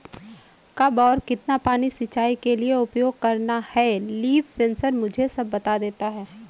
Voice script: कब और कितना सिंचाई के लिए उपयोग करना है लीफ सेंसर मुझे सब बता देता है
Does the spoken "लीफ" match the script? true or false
true